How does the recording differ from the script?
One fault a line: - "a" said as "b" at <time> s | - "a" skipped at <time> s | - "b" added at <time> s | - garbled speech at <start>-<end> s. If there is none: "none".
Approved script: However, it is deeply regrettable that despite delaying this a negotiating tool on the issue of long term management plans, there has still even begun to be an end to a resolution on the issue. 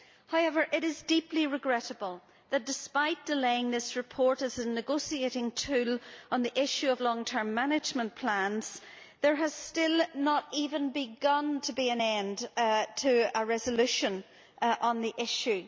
- "report as" added at 4.0 s
- "not" added at 10.1 s